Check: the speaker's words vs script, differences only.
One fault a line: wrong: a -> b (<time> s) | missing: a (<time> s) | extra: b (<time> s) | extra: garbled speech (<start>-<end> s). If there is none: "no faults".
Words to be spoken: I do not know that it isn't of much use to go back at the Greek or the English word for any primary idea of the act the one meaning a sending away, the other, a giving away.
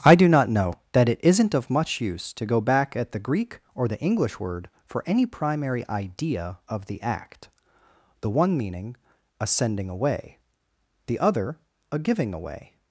no faults